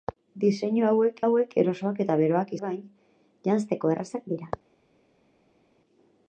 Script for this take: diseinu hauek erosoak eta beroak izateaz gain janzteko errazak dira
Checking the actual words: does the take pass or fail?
fail